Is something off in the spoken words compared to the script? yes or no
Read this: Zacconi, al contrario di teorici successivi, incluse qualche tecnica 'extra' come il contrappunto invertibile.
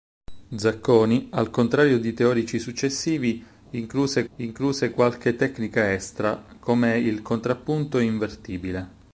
yes